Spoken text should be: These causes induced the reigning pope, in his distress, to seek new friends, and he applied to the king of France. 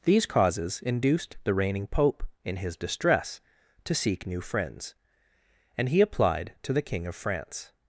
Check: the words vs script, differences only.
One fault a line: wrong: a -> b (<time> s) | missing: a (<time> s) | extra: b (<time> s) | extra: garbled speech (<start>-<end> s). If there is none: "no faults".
no faults